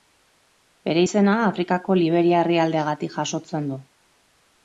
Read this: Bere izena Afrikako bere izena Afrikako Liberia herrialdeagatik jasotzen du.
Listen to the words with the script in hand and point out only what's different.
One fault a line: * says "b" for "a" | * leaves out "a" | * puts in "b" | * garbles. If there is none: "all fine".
* leaves out "bere izena Afrikako"